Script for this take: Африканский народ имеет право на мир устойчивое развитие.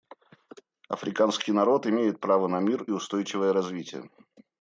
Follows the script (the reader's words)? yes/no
yes